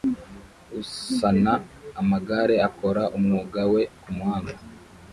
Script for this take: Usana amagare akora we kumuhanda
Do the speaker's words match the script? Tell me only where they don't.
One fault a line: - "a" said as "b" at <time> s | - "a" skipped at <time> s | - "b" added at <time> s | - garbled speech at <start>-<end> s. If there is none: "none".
- "umwuga" added at 3.2 s